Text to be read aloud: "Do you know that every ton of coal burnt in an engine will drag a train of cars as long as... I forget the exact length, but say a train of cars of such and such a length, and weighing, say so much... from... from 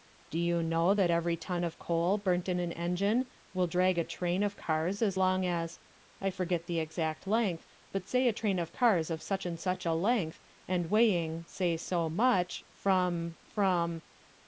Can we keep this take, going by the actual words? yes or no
yes